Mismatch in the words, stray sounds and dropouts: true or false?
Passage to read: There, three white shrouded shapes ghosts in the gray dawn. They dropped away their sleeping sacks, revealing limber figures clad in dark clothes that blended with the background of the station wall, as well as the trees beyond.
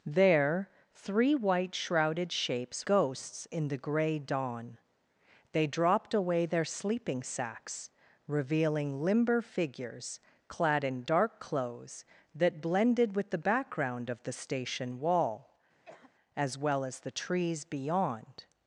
true